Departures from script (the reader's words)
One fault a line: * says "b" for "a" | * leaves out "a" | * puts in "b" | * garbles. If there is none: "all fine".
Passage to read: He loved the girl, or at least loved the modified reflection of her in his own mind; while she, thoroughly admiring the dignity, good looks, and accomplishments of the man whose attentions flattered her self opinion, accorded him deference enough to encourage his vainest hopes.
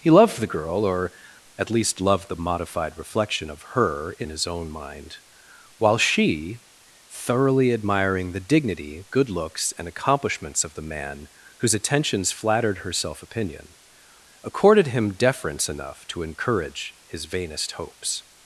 all fine